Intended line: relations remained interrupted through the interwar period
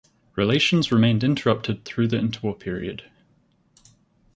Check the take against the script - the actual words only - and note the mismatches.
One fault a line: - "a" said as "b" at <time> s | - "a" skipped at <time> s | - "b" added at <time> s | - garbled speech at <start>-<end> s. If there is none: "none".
none